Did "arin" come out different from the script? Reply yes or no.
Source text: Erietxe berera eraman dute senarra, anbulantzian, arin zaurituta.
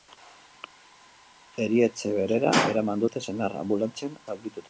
yes